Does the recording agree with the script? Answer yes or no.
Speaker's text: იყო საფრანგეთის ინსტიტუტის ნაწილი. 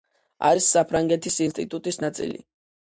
no